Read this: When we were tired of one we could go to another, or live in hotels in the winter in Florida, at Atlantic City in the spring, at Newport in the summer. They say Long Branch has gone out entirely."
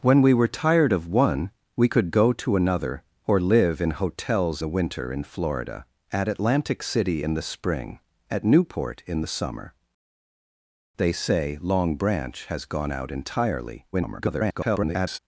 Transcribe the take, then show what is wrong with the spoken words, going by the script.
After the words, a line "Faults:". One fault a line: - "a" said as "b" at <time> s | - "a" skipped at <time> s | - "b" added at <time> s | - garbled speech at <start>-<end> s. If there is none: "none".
When we were tired of one we could go to another, or live in hotels the winter in Florida, at Atlantic City in the spring, at Newport in the summer. They say Long Branch has gone out entirely." [garbled]
Faults:
- "in" skipped at 4.6 s
- garbled speech at 13.9-15.2 s